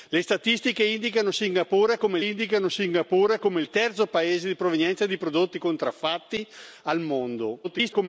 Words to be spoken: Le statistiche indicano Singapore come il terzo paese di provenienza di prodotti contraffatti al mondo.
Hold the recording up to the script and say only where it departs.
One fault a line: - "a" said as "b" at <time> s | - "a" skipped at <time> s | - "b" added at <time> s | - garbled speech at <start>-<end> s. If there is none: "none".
- "indicano Singapore come" added at 2.2 s
- garbled speech at 7.6-8.1 s